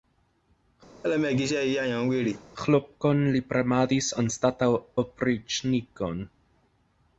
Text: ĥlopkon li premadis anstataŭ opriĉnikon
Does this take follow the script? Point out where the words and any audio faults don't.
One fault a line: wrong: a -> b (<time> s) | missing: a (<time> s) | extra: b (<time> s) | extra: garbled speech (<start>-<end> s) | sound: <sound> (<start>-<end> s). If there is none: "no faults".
sound: laugh (1.0-2.4 s)